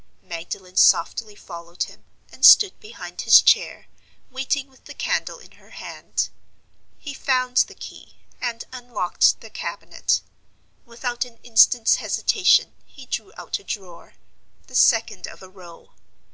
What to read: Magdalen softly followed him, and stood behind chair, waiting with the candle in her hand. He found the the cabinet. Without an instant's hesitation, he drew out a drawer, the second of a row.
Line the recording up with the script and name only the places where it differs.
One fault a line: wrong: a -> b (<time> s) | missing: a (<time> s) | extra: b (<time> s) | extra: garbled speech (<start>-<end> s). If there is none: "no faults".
extra: his (3.2 s)
extra: key and unlocked (7.8 s)